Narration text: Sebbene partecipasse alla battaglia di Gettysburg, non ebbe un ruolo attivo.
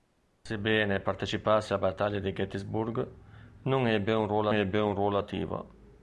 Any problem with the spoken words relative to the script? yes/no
yes